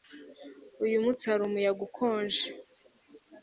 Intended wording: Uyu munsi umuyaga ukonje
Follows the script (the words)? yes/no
no